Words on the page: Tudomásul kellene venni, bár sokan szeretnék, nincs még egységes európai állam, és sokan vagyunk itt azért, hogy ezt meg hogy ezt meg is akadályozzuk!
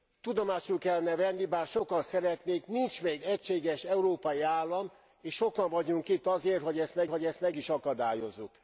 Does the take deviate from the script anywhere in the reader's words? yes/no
no